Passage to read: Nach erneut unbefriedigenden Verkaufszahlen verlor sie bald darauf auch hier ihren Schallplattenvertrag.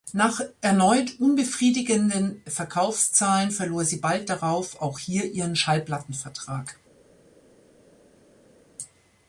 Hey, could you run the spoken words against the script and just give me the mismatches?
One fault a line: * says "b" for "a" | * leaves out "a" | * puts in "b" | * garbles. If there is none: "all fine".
all fine